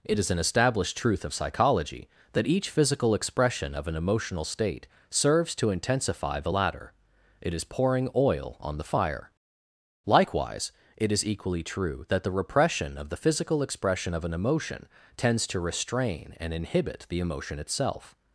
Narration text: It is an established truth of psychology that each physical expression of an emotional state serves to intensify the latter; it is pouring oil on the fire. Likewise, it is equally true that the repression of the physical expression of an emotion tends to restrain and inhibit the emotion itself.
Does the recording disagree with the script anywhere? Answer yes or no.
no